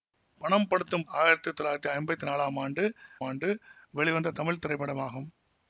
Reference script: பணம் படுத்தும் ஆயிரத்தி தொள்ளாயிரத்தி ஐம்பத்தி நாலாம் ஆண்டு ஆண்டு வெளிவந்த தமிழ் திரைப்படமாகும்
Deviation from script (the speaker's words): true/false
false